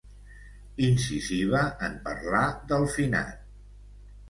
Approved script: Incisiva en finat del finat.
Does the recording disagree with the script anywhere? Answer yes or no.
yes